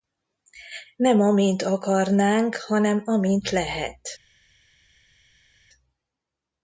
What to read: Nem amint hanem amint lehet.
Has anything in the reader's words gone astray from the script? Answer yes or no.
yes